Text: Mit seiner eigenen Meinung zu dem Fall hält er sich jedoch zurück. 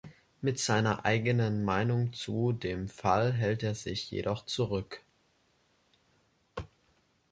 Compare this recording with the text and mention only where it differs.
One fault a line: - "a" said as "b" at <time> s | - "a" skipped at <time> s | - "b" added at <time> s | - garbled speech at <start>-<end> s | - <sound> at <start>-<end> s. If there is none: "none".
none